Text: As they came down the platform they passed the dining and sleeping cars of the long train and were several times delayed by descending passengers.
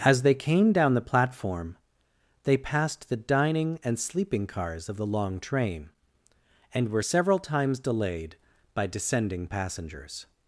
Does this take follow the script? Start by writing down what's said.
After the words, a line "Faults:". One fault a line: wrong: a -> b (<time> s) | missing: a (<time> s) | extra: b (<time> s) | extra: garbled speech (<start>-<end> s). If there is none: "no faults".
As they came down the platform they passed the dining and sleeping cars of the long train and were several times delayed by descending passengers.
Faults:
no faults